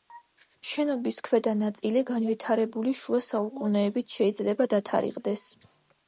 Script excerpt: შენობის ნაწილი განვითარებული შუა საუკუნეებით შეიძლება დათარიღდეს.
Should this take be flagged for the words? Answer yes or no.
yes